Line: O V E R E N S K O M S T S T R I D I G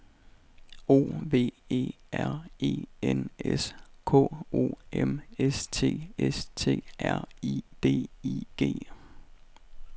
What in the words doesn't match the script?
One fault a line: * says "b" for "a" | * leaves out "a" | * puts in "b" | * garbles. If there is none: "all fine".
all fine